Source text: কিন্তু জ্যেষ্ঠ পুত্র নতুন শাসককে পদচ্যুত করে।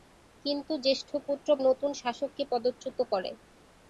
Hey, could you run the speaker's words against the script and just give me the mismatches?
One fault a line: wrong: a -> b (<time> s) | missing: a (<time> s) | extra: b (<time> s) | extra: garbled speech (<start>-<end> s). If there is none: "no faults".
no faults